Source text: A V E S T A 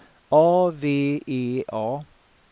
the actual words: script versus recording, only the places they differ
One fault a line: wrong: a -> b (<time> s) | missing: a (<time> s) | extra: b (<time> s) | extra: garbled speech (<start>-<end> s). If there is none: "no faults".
missing: S T (1.6 s)